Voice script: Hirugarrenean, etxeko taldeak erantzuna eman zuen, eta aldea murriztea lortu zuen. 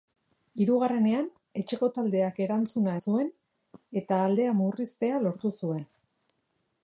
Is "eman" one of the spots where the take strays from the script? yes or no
yes